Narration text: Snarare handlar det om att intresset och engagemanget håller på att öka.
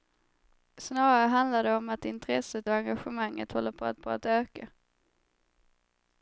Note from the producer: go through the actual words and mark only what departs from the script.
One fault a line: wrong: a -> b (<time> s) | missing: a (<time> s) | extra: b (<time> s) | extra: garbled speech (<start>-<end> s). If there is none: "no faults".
extra: på att (4.0 s)